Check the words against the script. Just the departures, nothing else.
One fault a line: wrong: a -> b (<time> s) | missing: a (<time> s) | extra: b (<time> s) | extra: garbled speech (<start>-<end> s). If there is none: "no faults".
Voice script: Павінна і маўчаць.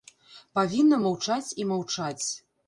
extra: маўчаць (1.0 s)